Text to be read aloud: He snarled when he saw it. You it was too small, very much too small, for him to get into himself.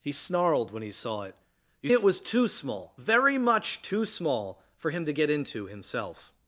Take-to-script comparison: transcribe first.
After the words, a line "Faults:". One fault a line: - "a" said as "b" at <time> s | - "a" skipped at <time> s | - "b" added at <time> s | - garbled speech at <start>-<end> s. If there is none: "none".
He snarled when he saw it. You it was too small, very much too small, for him to get into himself.
Faults:
none